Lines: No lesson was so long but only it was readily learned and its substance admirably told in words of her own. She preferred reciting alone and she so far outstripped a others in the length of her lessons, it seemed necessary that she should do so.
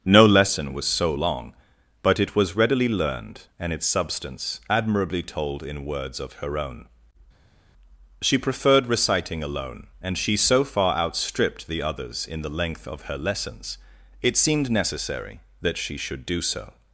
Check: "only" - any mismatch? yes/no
yes